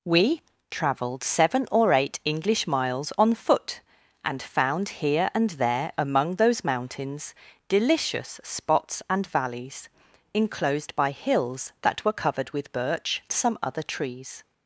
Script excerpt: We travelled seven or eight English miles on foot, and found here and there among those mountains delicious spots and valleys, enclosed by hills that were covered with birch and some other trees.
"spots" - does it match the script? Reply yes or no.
yes